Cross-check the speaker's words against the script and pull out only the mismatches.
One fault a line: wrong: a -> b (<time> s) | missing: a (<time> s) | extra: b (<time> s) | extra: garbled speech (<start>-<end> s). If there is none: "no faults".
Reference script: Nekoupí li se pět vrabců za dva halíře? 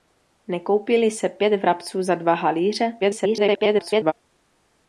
extra: garbled speech (3.0-4.1 s)